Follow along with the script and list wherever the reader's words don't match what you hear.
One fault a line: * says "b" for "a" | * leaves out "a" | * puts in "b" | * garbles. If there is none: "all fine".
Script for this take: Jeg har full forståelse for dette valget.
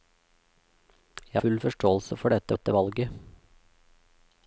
* leaves out "har"
* puts in "dette"